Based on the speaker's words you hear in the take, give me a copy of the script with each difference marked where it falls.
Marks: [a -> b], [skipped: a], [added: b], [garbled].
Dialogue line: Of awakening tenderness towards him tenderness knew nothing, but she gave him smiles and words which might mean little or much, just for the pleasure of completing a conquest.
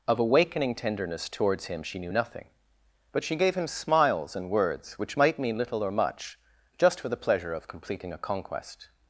Of awakening tenderness towards him [tenderness -> she] knew nothing, but she gave him smiles and words which might mean little or much, just for the pleasure of completing a conquest.